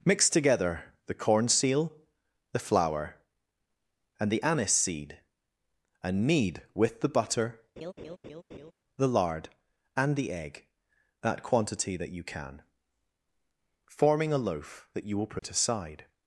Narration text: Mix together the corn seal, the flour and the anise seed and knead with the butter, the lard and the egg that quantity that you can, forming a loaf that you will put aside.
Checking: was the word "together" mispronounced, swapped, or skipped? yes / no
no